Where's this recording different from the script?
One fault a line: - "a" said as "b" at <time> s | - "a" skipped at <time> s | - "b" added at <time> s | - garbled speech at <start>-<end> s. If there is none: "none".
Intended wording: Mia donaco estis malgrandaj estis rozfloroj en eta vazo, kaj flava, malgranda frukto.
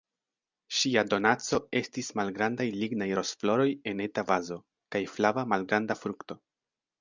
- "Mia" said as "Ŝia" at 0.8 s
- "estis" said as "lignaj" at 2.9 s